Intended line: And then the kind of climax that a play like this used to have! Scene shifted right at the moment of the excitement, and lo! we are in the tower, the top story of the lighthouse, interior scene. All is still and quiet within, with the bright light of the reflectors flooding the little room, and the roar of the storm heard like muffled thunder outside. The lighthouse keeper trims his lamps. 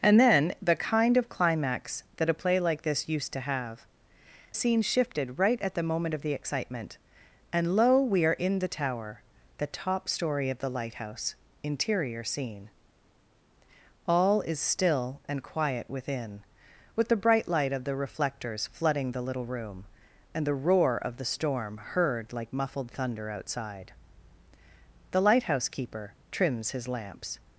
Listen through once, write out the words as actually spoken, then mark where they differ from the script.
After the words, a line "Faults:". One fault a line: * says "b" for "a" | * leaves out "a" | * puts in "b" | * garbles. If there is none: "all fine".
And then the kind of climax that a play like this used to have! Scene shifted right at the moment of the excitement, and lo! we are in the tower, the top story of the lighthouse, interior scene. All is still and quiet within, with the bright light of the reflectors flooding the little room, and the roar of the storm heard like muffled thunder outside. The lighthouse keeper trims his lamps.
Faults:
all fine